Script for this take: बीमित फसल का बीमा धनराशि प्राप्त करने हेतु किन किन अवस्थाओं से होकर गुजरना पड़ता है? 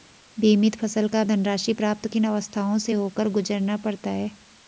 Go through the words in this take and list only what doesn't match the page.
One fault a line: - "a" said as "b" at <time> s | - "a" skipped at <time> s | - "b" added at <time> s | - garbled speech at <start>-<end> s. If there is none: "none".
- "बीमा" skipped at 1.2 s
- "करने हेतु किन" skipped at 2.1 s